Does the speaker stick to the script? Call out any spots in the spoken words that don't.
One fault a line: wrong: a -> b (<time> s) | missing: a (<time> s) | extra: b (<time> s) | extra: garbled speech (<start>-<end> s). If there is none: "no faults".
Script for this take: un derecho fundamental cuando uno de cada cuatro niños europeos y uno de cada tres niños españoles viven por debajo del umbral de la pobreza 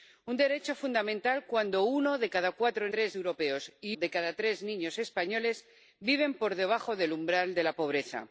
wrong: niños -> tres (2.9 s)
missing: uno (4.0 s)